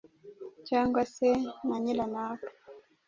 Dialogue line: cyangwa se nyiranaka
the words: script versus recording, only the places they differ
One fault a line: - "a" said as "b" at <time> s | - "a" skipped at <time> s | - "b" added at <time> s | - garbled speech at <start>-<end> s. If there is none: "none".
- "na" added at 1.7 s